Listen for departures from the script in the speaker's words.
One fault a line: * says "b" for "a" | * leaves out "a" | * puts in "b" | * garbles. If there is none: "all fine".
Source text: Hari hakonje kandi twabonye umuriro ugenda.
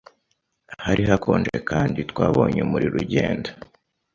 all fine